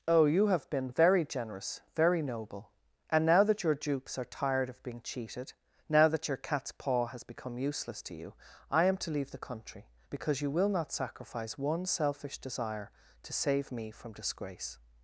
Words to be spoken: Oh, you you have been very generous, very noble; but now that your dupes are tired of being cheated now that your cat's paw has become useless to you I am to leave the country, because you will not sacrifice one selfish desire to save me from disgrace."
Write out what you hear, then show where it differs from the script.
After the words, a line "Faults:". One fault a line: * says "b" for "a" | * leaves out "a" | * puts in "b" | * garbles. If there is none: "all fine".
Oh, you have been very generous, very noble; and now that your dupes are tired of being cheated now that your cat's paw has become useless to you I am to leave the country, because you will not sacrifice one selfish desire to save me from disgrace."
Faults:
* leaves out "you"
* says "and" for "but"